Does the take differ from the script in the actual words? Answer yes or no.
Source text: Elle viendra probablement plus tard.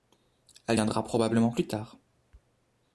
no